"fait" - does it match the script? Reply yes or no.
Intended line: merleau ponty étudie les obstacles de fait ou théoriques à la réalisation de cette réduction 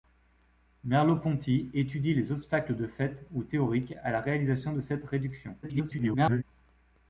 yes